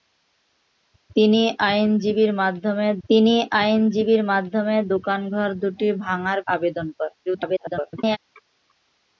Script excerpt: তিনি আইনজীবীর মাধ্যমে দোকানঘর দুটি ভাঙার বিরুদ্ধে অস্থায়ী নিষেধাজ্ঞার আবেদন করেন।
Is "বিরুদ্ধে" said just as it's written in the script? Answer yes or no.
no